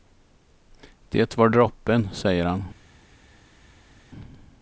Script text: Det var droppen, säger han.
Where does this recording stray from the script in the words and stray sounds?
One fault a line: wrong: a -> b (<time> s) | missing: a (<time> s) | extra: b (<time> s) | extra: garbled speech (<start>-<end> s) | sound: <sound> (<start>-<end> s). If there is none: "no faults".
no faults